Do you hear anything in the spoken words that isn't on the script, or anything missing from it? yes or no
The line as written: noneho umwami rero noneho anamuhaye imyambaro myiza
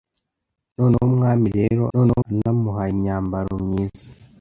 no